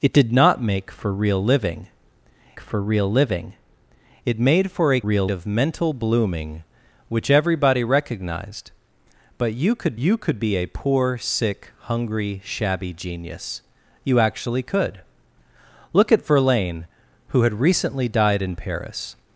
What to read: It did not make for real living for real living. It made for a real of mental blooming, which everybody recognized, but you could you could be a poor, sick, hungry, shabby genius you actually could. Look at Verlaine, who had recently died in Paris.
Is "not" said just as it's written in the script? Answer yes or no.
yes